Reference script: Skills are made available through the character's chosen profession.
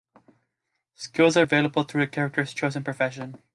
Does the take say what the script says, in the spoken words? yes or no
no